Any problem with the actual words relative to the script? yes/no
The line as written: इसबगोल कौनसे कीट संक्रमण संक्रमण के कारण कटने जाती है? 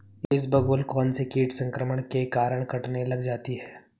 yes